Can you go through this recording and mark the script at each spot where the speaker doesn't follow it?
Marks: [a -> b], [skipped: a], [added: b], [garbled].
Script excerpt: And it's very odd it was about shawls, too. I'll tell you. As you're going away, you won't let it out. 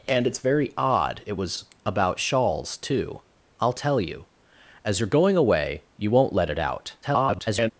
And it's very odd it was about shawls, too. I'll tell you. As you're going away, you won't let it out. [garbled]